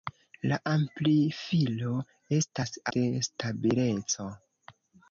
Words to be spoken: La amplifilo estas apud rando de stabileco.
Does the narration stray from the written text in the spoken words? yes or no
yes